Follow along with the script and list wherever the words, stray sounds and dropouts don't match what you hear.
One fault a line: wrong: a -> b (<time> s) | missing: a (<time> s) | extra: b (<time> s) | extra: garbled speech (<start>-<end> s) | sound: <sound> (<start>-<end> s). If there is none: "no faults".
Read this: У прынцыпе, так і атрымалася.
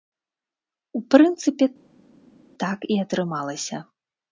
no faults